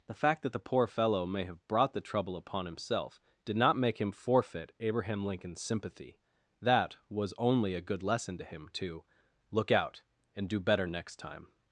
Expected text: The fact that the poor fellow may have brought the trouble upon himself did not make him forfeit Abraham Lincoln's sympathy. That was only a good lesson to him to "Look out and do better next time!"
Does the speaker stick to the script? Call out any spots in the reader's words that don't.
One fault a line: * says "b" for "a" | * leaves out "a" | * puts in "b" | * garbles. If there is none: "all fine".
all fine